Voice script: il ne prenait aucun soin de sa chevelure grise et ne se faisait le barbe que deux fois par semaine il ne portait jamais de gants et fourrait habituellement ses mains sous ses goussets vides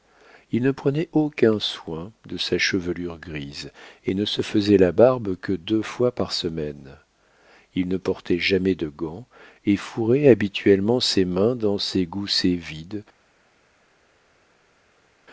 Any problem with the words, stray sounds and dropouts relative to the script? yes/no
yes